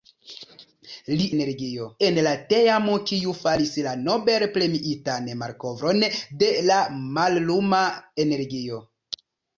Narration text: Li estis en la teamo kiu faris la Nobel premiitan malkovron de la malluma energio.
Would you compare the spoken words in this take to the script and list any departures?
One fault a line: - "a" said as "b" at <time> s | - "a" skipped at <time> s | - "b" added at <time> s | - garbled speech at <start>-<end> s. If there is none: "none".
- "estis" said as "energio" at 1.4 s